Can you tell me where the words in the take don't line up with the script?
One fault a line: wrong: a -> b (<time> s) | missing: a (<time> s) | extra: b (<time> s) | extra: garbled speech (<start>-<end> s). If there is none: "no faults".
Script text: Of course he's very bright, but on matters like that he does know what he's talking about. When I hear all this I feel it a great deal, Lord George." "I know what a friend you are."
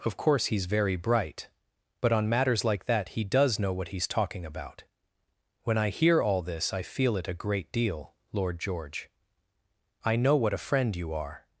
no faults